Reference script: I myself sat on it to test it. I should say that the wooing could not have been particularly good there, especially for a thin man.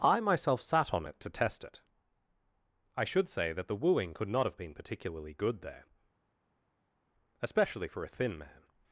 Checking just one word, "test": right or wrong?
right